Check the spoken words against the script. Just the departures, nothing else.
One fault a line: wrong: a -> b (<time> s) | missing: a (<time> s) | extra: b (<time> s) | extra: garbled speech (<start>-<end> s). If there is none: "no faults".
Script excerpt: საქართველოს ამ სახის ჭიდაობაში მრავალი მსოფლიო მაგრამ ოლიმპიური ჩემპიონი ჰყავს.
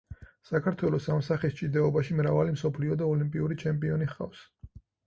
wrong: მაგრამ -> და (3.0 s)